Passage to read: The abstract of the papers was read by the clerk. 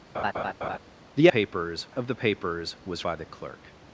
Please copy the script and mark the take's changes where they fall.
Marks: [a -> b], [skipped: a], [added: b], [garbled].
The [abstract -> papers] of the papers was [skipped: read] by the clerk.